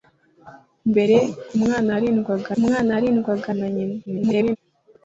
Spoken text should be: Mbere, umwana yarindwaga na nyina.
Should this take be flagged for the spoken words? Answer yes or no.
yes